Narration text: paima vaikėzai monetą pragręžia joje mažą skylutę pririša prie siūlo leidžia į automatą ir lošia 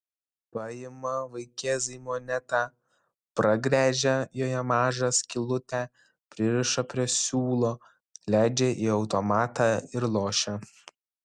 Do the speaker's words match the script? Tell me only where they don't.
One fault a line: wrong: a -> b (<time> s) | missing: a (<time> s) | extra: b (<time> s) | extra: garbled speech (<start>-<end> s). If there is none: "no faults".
no faults